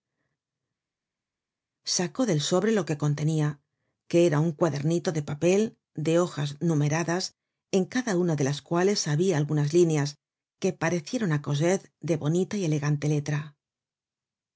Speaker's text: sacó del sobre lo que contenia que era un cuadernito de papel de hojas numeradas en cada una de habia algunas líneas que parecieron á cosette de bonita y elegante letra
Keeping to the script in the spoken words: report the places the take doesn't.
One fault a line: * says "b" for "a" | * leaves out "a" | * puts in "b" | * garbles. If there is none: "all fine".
* puts in "las cuales"